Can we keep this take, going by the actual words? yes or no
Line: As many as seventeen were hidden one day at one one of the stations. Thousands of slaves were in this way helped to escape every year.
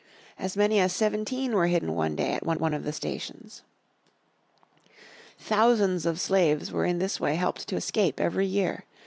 yes